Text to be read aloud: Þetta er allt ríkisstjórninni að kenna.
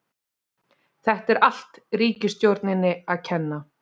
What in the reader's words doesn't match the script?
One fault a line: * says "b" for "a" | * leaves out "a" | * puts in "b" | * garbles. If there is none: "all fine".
all fine